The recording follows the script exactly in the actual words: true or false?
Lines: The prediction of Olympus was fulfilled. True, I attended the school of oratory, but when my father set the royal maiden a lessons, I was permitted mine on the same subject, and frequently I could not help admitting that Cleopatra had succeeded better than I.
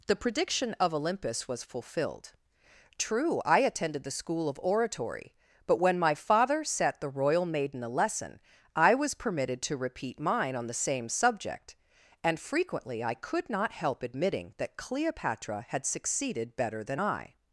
false